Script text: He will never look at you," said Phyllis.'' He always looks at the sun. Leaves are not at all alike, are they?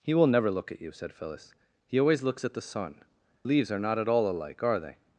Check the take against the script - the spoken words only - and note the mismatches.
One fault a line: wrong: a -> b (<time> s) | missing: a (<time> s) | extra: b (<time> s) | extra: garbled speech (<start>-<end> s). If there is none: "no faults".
no faults